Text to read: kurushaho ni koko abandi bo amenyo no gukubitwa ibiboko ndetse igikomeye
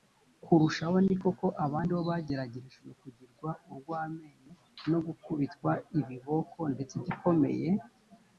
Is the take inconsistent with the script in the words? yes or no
yes